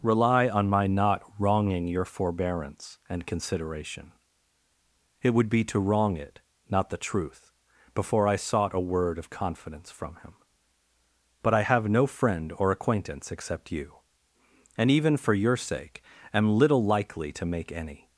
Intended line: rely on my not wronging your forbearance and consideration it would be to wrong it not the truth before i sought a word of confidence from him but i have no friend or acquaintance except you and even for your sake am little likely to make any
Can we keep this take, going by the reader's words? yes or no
yes